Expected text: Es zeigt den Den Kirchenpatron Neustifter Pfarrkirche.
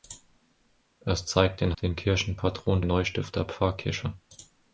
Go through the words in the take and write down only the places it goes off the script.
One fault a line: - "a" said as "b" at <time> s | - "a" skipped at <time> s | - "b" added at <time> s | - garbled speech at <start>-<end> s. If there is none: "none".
none